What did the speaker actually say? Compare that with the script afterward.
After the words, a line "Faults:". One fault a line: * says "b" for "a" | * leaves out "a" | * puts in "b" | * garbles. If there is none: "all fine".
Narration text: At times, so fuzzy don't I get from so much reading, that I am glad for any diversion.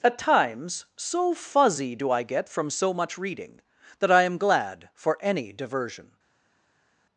At times, so fuzzy do I get from so much reading, that I am glad for any diversion.
Faults:
* says "do" for "don't"